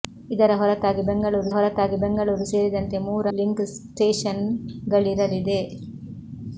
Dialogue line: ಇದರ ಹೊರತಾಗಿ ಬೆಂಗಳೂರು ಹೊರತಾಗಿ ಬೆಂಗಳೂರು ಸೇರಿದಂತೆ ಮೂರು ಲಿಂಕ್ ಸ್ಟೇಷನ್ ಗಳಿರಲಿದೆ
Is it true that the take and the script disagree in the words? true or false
false